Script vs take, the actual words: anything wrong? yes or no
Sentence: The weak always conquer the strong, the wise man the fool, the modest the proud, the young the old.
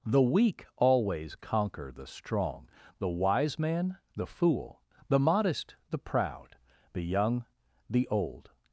no